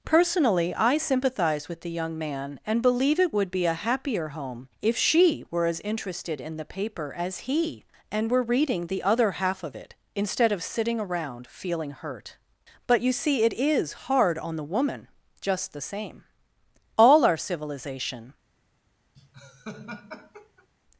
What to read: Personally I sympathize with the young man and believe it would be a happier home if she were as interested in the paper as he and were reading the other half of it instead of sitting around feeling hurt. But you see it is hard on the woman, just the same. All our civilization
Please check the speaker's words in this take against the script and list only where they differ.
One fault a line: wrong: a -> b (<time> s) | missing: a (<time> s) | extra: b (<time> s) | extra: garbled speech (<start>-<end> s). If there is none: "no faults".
no faults